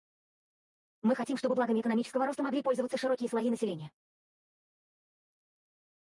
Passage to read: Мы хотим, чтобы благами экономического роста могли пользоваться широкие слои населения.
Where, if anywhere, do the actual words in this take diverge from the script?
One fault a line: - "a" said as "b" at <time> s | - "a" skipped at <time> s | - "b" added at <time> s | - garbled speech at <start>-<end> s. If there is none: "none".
none